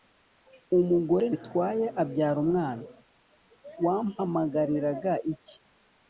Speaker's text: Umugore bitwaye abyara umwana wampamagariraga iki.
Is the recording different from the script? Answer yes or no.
no